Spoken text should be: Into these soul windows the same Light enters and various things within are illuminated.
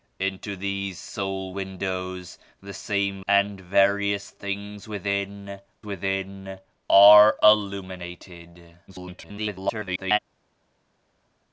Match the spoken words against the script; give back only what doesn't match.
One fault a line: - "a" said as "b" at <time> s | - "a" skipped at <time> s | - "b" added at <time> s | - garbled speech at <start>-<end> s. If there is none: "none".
- "Light enters" skipped at 3.2 s
- "within" added at 5.8 s
- garbled speech at 8.9-10.2 s